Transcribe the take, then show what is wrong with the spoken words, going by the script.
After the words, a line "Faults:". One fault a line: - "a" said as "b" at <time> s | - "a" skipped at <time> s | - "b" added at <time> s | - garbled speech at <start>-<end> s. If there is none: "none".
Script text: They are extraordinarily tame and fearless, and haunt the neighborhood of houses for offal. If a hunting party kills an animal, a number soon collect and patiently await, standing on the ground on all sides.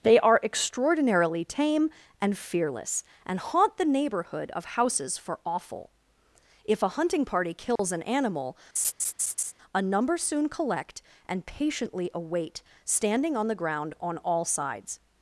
They are extraordinarily tame and fearless, and haunt the neighborhood of houses for offal. If a hunting party kills an animal, a number soon collect and patiently await, standing on the ground on all sides.
Faults:
none